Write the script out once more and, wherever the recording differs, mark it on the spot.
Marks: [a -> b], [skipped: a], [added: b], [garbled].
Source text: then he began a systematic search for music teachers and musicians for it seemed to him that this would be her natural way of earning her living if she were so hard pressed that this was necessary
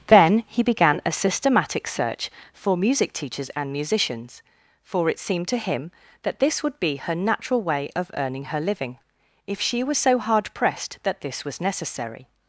then he began a systematic search for music teachers and musicians for it seemed to him that this would be her natural way of earning her living if she [were -> was] so hard pressed that this was necessary